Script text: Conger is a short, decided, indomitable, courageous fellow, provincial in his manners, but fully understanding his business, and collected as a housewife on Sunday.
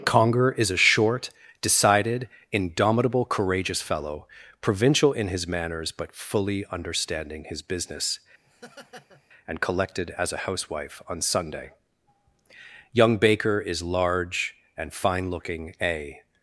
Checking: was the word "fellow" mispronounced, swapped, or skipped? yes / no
no